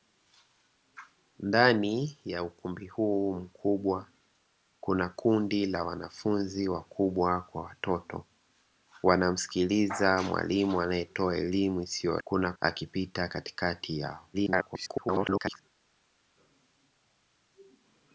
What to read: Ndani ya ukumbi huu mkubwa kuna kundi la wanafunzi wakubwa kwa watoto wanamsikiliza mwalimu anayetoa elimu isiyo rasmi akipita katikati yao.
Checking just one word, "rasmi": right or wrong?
wrong